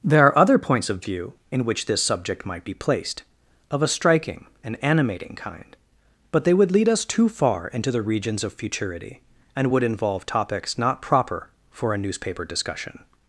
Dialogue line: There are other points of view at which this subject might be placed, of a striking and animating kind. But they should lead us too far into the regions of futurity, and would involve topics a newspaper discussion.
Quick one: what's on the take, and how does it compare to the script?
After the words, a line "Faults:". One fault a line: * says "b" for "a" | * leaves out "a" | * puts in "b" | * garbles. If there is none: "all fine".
There are other points of view in which this subject might be placed, of a striking and animating kind. But they would lead us too far into the regions of futurity, and would involve topics not proper for a newspaper discussion.
Faults:
* says "in" for "at"
* says "would" for "should"
* puts in "not proper for"